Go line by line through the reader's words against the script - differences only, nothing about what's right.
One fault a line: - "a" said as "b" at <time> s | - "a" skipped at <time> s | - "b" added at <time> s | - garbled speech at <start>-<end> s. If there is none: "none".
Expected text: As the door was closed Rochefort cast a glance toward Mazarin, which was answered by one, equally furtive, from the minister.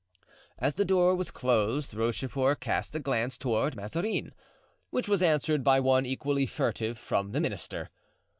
none